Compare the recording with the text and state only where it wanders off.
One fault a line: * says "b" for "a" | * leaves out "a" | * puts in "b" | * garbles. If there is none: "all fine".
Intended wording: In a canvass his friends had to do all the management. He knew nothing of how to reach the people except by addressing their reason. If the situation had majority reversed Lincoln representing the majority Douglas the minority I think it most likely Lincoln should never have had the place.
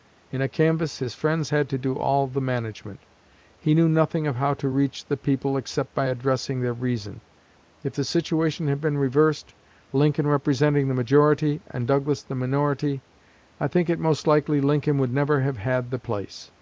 * says "been" for "majority"
* puts in "and"
* says "would" for "should"